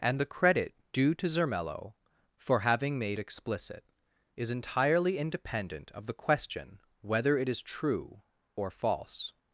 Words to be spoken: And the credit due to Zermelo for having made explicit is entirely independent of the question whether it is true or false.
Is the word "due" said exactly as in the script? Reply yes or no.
yes